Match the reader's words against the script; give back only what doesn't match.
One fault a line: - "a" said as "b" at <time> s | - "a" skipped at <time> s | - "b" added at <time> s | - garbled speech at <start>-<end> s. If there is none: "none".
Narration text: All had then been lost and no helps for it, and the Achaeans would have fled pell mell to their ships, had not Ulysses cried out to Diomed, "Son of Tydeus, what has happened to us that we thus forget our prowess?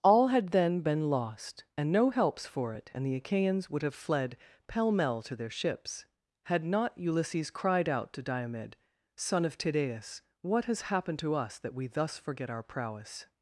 none